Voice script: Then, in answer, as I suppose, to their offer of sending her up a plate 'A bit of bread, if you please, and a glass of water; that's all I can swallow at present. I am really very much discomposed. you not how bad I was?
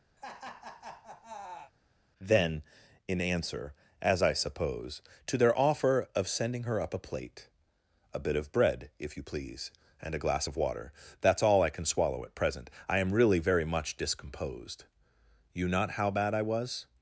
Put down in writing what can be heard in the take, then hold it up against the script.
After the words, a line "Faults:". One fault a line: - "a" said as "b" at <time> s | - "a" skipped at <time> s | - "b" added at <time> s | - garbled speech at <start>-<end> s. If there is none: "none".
Then, in answer, as I suppose, to their offer of sending her up a plate 'A bit of bread, if you please, and a glass of water; that's all I can swallow at present. I am really very much discomposed. you not how bad I was?
Faults:
none